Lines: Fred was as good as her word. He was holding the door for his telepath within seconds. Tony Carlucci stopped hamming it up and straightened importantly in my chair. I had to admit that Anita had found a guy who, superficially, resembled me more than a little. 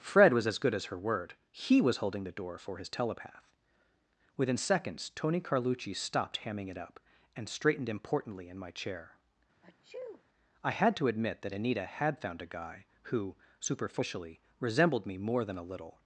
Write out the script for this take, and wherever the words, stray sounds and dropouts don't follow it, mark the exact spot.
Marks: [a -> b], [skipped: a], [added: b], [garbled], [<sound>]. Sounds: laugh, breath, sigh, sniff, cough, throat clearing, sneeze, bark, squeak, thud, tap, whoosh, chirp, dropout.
Fred was as good as her word. He was holding the door for his telepath within seconds. Tony Carlucci stopped hamming it up and straightened importantly in my chair. [sneeze] I had to admit that Anita had found a guy who, superficially, resembled me more than a little.